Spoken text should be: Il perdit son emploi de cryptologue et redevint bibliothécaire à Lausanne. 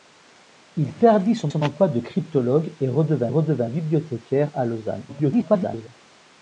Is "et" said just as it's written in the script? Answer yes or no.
yes